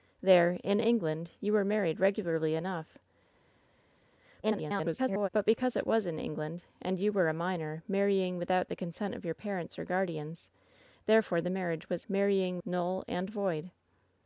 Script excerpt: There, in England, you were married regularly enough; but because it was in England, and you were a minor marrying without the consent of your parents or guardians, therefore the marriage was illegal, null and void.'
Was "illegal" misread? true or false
true